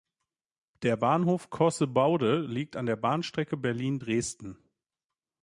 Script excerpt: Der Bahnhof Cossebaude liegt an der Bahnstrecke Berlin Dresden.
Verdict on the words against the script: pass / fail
pass